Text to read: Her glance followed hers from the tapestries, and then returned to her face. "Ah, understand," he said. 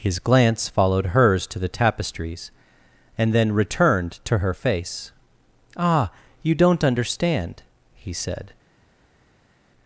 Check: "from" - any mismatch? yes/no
yes